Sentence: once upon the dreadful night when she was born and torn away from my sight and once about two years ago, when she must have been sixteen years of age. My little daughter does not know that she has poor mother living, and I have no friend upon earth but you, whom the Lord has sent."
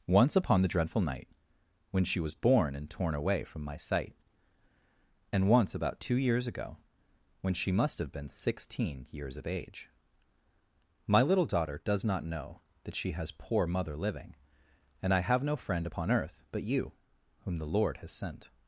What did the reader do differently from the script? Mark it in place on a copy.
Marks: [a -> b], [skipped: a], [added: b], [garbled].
once upon the dreadful night when she was born and torn away from my sight and once about two years ago, when she must have been sixteen years of age. My little daughter does not know that she has poor mother living, and I have no friend upon earth but you, whom the Lord has sent."